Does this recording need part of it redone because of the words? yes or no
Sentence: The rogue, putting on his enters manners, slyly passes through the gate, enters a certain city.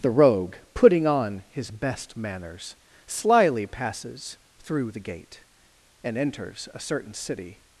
yes